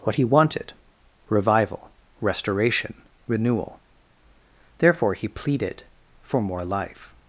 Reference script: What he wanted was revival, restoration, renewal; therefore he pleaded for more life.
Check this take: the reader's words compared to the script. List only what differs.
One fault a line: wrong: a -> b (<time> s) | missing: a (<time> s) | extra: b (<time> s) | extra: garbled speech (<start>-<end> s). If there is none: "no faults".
missing: was (0.7 s)